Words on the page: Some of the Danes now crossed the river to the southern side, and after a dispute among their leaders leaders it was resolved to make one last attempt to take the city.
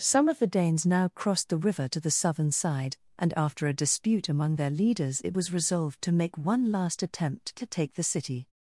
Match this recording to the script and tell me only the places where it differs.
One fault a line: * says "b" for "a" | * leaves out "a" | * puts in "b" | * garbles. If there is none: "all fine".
* leaves out "leaders"